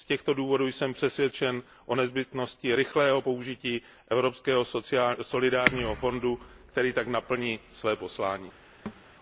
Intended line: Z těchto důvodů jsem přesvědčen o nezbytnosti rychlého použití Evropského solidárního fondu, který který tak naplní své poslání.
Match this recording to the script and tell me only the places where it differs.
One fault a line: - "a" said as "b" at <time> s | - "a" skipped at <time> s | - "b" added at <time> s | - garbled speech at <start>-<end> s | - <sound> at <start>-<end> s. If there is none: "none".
- "který" skipped at 6.9 s
- thud at 8.9-9.0 s